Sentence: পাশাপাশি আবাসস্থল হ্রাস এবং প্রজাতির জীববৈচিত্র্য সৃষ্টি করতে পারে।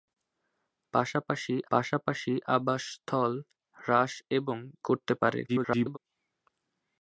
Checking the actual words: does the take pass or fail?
fail